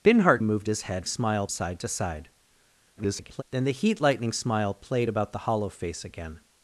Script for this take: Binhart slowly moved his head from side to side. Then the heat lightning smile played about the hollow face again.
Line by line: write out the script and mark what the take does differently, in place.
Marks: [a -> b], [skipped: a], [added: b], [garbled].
Binhart [skipped: slowly] moved his head [from -> smile] side to side. [garbled] Then the heat lightning smile played about the hollow face again.